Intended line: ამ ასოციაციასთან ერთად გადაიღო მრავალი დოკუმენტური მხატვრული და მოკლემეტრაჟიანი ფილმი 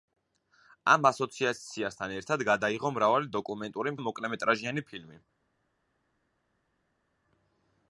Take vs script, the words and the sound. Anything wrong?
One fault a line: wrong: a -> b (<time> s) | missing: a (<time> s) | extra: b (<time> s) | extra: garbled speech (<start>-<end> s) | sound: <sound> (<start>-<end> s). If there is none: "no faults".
missing: მხატვრული (4.0 s)